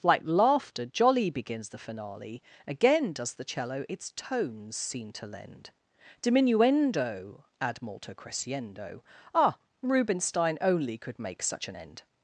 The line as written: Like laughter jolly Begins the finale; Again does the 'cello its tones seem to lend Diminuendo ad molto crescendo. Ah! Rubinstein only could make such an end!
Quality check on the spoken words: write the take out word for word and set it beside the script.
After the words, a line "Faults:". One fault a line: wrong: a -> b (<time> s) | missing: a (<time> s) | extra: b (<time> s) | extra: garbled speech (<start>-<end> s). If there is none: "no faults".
Like laughter jolly Begins the finale; Again does the 'cello its tones seem to lend Diminuendo ad molto crescendo. Ah! Rubinstein only could make such an end!
Faults:
no faults